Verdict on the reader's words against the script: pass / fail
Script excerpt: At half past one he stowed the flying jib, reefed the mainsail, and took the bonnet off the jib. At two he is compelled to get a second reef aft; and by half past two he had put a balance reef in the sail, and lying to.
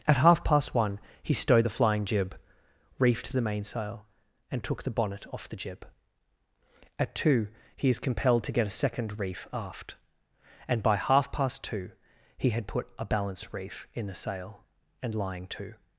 pass